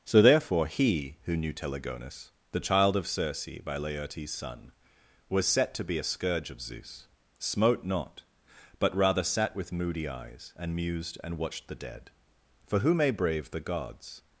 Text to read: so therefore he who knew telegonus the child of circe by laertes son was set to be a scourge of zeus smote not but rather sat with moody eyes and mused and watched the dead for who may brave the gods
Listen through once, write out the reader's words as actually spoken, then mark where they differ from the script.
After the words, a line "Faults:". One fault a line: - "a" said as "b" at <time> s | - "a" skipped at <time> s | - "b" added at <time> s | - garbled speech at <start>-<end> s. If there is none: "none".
so therefore he who knew telegonus the child of circe by laertes son was set to be a scourge of zeus smote not but rather sat with moody eyes and mused and watched the dead for who may brave the gods
Faults:
none